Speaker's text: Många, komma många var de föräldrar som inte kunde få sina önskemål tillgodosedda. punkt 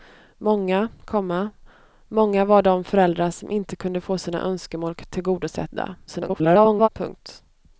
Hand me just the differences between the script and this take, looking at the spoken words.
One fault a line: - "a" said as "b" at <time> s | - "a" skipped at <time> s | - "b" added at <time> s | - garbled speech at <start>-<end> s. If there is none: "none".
- garbled speech at 6.1-6.9 s